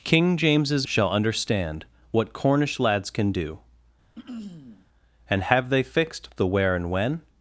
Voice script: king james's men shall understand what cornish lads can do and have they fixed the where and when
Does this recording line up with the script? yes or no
no